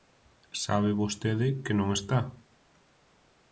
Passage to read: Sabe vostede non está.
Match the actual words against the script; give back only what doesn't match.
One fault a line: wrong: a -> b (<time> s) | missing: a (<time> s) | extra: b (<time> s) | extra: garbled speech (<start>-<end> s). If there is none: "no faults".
extra: que (1.6 s)